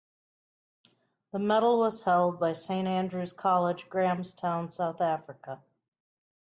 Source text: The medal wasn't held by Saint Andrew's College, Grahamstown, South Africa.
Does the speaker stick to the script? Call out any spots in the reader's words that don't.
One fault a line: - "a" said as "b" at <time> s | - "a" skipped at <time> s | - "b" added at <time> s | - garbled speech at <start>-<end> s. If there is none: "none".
- "wasn't" said as "was" at 1.8 s